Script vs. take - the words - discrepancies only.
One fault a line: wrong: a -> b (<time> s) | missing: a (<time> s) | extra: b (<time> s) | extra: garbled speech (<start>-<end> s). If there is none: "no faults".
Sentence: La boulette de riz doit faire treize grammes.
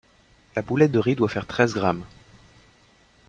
no faults